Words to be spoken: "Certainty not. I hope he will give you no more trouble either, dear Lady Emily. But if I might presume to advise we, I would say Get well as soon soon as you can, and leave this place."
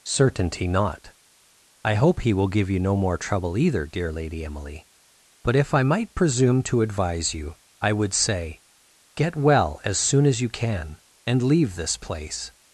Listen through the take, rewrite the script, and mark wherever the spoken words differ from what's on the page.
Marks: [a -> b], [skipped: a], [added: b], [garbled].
"Certainty not. I hope he will give you no more trouble either, dear Lady Emily. But if I might presume to advise [we, -> you] I would say Get well as soon [skipped: soon] as you can, and leave this place."